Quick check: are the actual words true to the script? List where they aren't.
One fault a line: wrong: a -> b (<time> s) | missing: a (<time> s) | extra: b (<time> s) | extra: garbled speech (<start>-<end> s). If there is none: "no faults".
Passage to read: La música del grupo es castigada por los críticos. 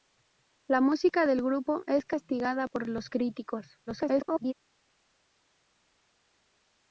extra: garbled speech (3.9-4.5 s)